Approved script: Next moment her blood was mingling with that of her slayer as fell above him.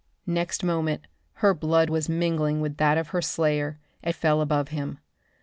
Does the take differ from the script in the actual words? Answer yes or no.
no